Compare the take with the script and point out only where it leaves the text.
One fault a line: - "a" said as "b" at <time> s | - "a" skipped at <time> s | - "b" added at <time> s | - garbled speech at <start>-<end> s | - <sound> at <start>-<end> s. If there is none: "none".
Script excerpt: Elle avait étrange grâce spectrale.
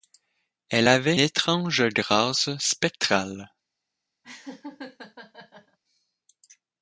- laugh at 4.2-5.8 s